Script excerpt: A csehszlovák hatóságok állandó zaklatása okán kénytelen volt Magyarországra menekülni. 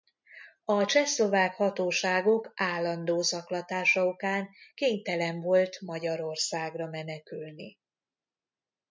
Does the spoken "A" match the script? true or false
true